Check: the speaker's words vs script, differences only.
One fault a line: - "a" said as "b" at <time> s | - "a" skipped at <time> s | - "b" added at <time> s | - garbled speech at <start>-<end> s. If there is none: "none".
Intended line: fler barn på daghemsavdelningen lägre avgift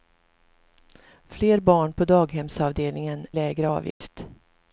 none